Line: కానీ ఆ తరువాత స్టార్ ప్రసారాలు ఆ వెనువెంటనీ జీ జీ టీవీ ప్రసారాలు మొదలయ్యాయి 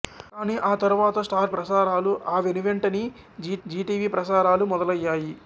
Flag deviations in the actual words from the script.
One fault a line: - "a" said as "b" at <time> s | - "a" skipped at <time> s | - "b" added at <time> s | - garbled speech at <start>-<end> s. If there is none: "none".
none